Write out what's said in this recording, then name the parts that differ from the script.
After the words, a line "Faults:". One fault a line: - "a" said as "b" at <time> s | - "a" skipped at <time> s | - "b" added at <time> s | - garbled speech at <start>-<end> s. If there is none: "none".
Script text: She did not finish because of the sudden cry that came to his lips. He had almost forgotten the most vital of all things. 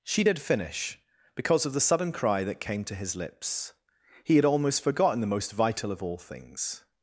She did finish because of the sudden cry that came to his lips. He had almost forgotten the most vital of all things.
Faults:
- "not" skipped at 0.4 s